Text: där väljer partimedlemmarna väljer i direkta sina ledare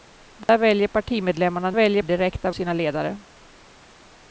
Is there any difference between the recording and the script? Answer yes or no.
no